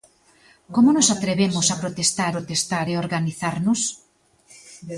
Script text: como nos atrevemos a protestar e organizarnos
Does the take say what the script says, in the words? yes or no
no